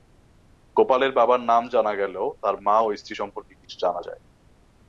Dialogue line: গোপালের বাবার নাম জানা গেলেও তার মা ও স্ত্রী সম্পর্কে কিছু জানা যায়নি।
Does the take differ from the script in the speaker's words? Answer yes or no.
no